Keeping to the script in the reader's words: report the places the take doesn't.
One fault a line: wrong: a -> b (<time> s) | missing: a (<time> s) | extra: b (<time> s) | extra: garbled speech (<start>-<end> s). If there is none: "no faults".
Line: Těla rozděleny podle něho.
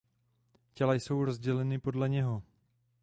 extra: jsou (0.9 s)